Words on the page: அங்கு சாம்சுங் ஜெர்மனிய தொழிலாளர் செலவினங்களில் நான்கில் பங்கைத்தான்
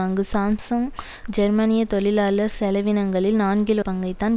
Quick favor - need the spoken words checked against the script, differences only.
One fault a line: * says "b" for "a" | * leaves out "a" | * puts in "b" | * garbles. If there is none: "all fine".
all fine